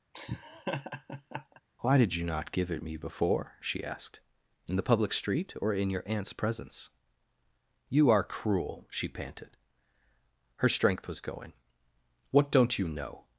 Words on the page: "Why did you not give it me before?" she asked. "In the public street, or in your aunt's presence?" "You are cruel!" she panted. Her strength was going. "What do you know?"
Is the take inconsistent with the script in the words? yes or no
yes